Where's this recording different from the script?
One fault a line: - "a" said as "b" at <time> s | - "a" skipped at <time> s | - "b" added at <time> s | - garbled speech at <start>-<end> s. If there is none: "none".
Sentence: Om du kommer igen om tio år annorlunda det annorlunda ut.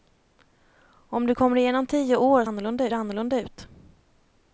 none